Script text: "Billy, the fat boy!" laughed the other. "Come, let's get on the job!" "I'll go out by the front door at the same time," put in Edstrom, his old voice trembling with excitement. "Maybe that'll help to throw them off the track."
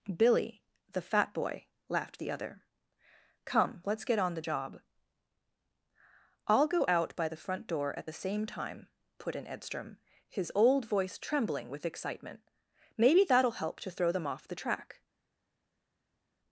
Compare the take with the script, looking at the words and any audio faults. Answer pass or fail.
pass